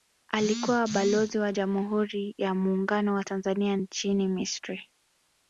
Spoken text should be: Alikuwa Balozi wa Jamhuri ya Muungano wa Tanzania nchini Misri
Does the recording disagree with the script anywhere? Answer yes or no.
no